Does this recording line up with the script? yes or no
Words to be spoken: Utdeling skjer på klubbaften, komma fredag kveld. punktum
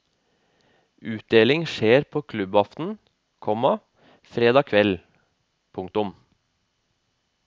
yes